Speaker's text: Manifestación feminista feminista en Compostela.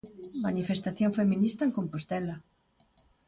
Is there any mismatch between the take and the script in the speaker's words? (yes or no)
yes